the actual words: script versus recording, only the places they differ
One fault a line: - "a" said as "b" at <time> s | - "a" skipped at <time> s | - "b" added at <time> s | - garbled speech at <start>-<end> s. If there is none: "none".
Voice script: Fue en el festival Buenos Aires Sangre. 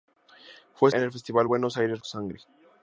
none